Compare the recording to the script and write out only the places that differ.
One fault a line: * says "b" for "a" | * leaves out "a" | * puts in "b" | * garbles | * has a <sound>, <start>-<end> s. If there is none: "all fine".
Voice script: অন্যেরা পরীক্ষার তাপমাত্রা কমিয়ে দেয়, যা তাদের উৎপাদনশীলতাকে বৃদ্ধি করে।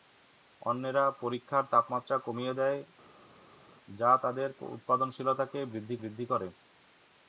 * puts in "বৃদ্ধি"